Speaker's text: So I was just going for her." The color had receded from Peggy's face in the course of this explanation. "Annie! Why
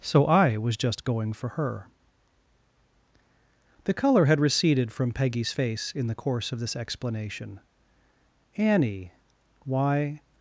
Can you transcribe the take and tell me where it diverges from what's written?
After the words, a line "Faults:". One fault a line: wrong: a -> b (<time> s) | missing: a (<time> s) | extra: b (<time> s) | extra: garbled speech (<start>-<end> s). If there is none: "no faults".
So I was just going for her." The color had receded from Peggy's face in the course of this explanation. "Annie! Why
Faults:
no faults